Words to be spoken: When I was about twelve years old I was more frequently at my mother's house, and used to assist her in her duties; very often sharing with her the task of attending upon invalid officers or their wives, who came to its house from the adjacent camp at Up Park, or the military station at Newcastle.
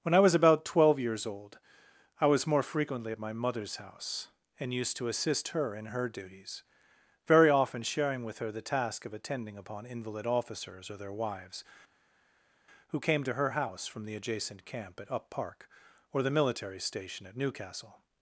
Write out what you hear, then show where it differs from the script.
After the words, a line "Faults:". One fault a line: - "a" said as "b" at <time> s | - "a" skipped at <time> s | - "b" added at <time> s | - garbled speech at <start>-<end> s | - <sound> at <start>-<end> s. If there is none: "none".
When I was about twelve years old I was more frequently at my mother's house, and used to assist her in her duties; very often sharing with her the task of attending upon invalid officers or their wives, who came to her house from the adjacent camp at Up Park, or the military station at Newcastle.
Faults:
- "its" said as "her" at 13.3 s